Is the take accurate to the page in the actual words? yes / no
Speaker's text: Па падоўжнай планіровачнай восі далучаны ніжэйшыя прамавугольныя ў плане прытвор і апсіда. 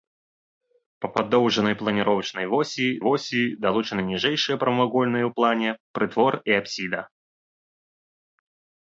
no